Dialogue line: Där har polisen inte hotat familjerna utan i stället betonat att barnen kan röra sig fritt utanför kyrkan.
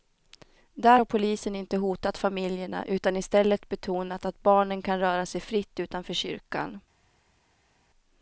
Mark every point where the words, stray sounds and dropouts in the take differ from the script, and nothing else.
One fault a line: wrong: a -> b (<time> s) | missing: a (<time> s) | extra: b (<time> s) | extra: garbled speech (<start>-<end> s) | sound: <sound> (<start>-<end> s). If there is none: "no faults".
no faults